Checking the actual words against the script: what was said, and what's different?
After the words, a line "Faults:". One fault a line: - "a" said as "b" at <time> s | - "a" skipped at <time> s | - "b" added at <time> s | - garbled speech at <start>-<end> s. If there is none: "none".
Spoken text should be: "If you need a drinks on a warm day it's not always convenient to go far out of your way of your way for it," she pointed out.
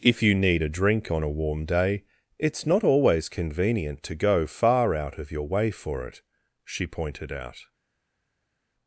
"If you need a drink on a warm day it's not always convenient to go far out of your way for it," she pointed out.
Faults:
- "drinks" said as "drink" at 0.7 s
- "of your way" skipped at 5.7 s